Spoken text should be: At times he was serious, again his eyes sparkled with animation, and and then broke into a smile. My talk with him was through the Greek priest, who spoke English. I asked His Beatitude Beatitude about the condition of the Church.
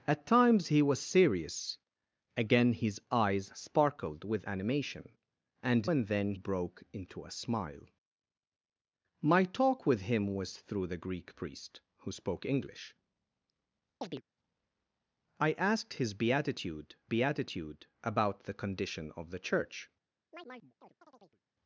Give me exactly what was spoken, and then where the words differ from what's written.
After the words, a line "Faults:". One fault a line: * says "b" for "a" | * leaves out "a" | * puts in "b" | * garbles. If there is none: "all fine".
At times he was serious, again his eyes sparkled with animation, and and then broke into a smile. My talk with him was through the Greek priest, who spoke English. I asked His Beatitude Beatitude about the condition of the Church.
Faults:
all fine